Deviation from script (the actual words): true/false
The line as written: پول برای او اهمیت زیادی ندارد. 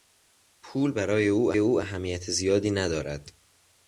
true